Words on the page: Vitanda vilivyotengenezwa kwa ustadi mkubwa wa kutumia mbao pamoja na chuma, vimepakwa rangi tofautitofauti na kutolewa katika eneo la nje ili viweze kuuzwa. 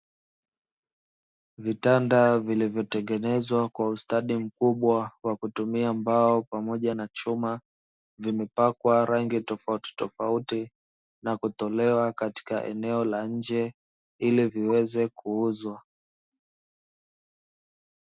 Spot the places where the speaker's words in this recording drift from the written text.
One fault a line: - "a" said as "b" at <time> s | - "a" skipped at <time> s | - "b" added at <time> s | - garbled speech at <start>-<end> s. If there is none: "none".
none